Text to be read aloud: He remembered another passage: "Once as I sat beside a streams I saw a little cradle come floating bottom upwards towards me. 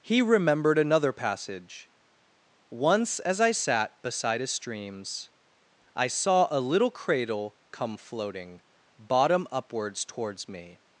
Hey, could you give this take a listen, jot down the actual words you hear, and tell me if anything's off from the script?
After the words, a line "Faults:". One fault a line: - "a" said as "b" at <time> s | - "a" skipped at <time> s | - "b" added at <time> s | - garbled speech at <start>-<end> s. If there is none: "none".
He remembered another passage: "Once as I sat beside a streams I saw a little cradle come floating bottom upwards towards me.
Faults:
none